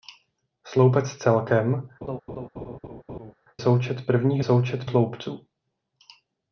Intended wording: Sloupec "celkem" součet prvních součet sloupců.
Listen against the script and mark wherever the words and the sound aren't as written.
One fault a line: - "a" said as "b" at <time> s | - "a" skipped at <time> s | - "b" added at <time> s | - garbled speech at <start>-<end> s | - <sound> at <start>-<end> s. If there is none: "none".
- laugh at 2.0-3.3 s